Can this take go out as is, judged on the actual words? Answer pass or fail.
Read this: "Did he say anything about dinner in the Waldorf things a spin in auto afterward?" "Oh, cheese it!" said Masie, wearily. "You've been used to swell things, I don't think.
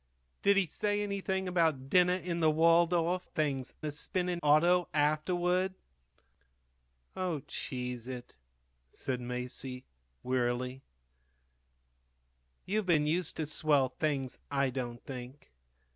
pass